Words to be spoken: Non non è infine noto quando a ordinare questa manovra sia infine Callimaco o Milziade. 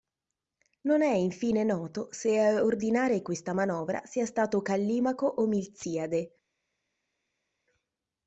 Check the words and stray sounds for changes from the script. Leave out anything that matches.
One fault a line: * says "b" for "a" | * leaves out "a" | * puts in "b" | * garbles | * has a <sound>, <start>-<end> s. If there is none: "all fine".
* leaves out "non"
* says "se" for "quando"
* says "stato" for "infine"